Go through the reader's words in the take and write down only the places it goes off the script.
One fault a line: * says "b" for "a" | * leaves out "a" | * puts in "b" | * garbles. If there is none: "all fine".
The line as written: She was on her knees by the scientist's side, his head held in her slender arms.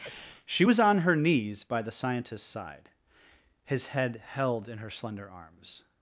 all fine